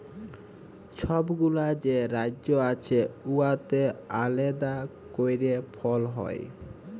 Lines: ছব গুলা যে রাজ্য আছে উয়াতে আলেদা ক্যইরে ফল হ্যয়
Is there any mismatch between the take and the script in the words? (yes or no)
no